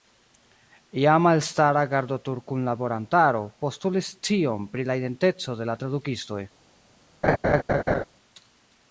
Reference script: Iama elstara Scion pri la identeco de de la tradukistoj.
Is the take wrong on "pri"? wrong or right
right